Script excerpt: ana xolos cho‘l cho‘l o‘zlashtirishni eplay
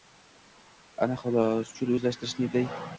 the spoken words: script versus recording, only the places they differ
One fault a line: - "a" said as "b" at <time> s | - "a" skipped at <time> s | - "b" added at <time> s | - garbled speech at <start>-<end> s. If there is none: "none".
- "cho‘l" skipped at 1.9 s